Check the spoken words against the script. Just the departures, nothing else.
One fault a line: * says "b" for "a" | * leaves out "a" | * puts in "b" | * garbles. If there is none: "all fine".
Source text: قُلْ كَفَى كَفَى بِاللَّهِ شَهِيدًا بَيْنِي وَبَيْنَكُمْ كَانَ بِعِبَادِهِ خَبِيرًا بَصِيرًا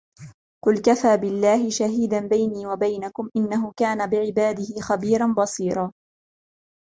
* leaves out "كَفَى"
* puts in "إِنَّهُ"